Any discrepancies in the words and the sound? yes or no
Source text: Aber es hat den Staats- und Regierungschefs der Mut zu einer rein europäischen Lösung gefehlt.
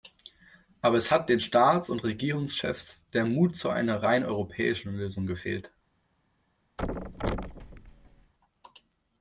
yes